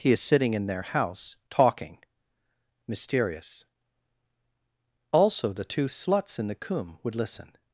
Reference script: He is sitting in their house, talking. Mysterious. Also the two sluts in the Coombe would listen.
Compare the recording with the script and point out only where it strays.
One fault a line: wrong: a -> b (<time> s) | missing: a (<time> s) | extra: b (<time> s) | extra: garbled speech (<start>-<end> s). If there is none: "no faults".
no faults